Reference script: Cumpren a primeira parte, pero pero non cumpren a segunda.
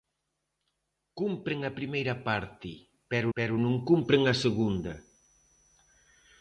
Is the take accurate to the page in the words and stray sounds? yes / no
yes